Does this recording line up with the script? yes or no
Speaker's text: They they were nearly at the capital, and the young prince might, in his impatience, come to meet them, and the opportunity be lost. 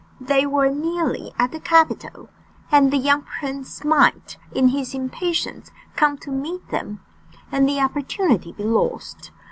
no